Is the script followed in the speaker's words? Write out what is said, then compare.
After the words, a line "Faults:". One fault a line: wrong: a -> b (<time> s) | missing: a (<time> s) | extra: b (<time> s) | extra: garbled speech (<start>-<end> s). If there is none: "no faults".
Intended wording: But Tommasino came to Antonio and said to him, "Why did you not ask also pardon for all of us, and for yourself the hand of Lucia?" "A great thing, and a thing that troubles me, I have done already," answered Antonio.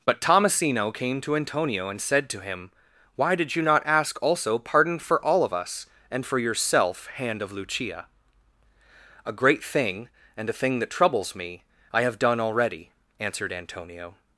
But Tommasino came to Antonio and said to him, "Why did you not ask also pardon for all of us, and for yourself hand of Lucia?" "A great thing, and a thing that troubles me, I have done already," answered Antonio.
Faults:
missing: the (7.1 s)